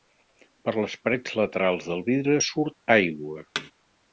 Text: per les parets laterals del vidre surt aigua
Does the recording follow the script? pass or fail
pass